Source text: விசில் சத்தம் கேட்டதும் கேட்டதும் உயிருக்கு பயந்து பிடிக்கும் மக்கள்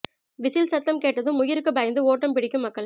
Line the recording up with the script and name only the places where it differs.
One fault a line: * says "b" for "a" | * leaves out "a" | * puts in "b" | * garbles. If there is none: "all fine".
* leaves out "கேட்டதும்"
* puts in "ஓட்டம்"